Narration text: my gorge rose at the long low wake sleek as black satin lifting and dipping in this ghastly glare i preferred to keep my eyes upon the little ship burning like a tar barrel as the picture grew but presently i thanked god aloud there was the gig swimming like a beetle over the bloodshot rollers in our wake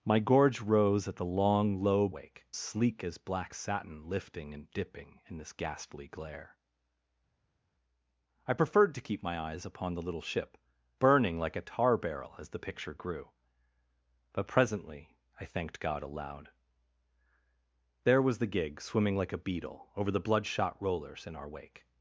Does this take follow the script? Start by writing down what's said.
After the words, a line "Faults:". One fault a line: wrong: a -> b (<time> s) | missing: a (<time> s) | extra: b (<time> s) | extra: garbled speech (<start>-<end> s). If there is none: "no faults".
my gorge rose at the long low wake sleek as black satin lifting and dipping in this ghastly glare i preferred to keep my eyes upon the little ship burning like a tar barrel as the picture grew but presently i thanked god aloud there was the gig swimming like a beetle over the bloodshot rollers in our wake
Faults:
no faults